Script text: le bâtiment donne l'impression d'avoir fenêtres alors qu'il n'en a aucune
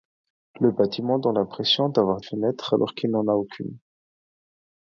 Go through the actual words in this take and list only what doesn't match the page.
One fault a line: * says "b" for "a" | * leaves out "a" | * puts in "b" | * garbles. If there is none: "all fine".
all fine